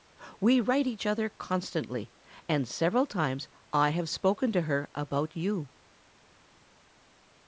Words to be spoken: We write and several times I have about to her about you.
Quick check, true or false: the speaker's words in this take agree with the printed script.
false